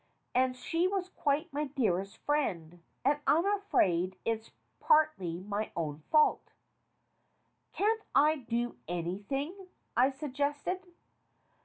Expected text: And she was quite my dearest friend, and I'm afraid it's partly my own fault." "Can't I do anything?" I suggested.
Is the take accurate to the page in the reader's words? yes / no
yes